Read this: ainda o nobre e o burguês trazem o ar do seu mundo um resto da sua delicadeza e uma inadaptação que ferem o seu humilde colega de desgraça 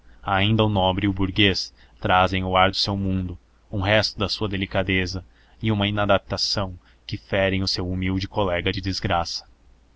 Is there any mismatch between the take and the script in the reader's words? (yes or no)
no